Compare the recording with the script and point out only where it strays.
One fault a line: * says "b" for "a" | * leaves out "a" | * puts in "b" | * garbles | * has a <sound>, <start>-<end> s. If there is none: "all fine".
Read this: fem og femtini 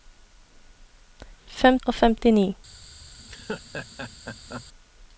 * has a laugh, 3.2-4.7 s